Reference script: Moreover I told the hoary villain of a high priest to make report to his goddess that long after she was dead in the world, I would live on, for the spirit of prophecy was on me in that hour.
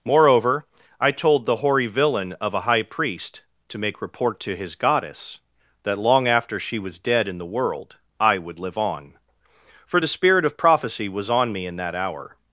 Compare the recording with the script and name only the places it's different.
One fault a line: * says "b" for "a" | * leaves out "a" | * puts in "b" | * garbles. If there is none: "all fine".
all fine